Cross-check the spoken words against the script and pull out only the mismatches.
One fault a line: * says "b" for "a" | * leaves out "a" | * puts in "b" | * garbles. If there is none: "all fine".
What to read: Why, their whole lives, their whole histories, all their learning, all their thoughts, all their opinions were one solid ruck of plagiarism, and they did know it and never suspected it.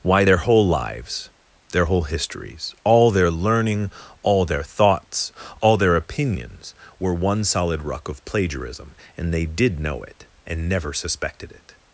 all fine